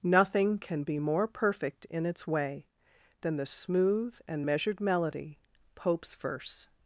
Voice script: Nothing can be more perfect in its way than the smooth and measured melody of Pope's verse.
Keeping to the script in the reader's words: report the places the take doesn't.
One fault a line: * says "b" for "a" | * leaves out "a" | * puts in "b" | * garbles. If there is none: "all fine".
* leaves out "of"